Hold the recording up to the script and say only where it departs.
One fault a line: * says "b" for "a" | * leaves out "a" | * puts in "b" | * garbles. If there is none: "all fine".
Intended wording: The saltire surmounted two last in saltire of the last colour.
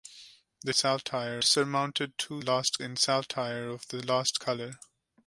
all fine